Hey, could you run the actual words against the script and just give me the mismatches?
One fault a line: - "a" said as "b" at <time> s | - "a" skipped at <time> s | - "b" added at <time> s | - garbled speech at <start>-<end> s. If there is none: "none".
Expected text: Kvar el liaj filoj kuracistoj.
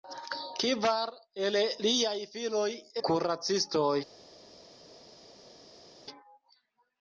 none